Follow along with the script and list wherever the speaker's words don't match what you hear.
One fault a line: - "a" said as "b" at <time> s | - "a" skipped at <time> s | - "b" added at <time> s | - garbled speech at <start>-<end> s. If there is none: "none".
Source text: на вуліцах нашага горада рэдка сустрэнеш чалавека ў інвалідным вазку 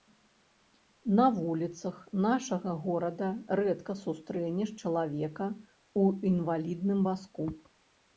none